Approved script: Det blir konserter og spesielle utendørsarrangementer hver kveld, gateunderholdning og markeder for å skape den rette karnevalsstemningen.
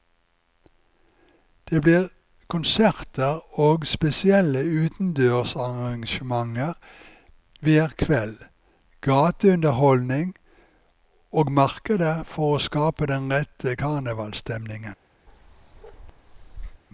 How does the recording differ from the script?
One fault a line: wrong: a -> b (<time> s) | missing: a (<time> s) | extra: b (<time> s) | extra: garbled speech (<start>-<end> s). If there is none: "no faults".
no faults